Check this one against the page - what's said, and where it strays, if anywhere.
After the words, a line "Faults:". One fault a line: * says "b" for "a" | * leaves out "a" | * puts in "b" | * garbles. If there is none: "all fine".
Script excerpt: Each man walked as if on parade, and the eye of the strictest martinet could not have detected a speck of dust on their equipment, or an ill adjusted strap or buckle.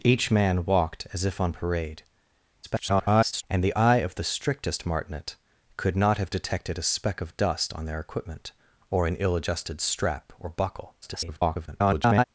Each man walked as if on parade, [garbled] and the eye of the strictest martinet could not have detected a speck of dust on their equipment, or an ill adjusted strap or buckle. [garbled]
Faults:
* garbles
* garbles